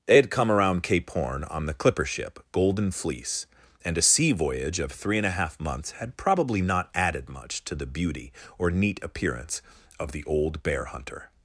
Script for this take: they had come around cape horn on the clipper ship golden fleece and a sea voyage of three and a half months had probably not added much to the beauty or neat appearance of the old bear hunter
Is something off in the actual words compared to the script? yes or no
no